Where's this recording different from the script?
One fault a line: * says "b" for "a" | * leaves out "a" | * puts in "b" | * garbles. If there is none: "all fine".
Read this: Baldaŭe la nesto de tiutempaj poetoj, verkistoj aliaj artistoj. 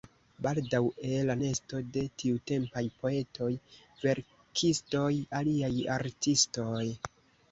all fine